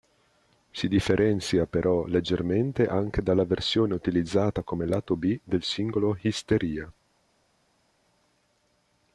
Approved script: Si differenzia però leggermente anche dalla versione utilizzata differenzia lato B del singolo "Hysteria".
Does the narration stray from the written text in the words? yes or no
yes